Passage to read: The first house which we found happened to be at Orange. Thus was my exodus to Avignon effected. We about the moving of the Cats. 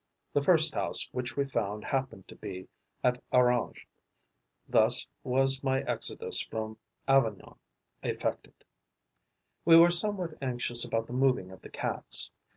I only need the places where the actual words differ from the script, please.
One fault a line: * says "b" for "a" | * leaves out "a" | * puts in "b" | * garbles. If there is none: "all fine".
* says "from" for "to"
* puts in "were somewhat anxious"